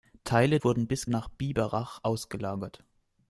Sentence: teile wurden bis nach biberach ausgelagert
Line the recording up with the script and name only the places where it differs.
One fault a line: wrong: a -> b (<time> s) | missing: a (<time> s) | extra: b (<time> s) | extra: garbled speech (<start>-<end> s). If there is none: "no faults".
no faults